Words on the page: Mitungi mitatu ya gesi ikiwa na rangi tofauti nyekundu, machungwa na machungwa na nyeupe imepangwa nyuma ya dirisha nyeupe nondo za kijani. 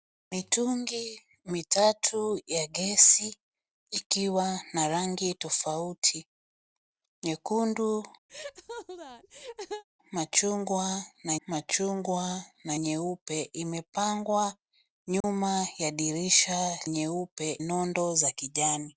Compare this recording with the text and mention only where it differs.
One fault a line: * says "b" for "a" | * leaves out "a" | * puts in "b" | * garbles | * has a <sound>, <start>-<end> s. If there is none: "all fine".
* has a laugh, 8.3-9.8 s
* has a dropout, 15.2-15.2 s